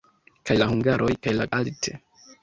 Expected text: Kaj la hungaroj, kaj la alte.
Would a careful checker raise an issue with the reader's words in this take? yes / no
no